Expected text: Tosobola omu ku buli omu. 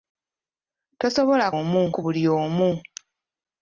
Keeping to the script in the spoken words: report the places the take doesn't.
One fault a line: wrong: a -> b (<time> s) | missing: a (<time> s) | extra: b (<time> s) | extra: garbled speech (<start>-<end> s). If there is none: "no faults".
no faults